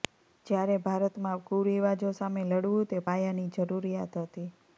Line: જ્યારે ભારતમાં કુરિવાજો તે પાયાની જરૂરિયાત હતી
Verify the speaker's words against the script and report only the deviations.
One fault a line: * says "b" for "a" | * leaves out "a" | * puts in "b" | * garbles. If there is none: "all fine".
* puts in "સામે લડવું"